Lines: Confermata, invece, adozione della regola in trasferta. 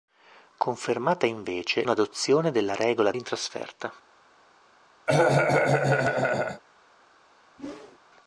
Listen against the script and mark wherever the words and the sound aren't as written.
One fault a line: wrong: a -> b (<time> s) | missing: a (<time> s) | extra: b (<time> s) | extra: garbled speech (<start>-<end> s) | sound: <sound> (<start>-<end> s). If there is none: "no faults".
sound: cough (5.1-6.6 s)
sound: whoosh (7.6-8.0 s)